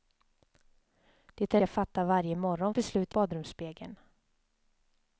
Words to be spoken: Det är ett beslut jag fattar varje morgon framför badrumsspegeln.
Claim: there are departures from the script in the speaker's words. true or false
true